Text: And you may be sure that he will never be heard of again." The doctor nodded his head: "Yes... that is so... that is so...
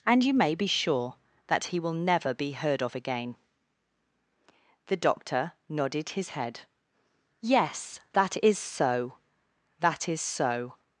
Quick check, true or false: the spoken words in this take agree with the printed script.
true